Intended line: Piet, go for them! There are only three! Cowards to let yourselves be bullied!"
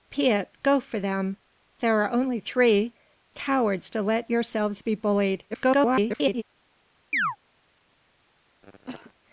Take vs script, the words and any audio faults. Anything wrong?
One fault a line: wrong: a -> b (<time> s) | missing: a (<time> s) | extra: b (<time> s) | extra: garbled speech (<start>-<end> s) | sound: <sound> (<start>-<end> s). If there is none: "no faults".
extra: garbled speech (5.5-6.4 s)
sound: chirp (7.1-7.4 s)
sound: cough (8.6-9.1 s)